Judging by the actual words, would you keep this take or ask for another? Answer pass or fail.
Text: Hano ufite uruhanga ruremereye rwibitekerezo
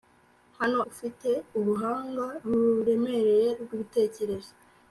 pass